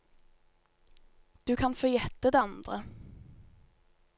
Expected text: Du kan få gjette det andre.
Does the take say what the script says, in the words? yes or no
yes